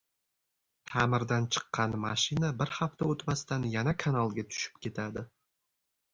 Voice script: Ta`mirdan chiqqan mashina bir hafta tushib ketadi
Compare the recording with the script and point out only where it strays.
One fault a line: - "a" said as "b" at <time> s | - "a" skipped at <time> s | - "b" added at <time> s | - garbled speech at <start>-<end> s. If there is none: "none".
- "o`tmasdan yana kanalga" added at 3.1 s